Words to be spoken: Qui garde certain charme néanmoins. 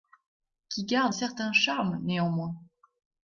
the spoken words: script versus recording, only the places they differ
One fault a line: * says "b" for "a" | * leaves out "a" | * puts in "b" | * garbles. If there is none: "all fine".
all fine